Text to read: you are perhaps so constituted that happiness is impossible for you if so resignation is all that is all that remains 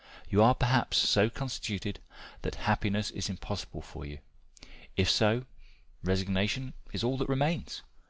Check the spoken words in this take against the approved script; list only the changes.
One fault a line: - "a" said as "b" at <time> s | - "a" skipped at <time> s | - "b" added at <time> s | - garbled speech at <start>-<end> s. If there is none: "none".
- "is all that" skipped at 7.3 s